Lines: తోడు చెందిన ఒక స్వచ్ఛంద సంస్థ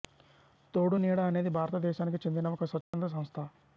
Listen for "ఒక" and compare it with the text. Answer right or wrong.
right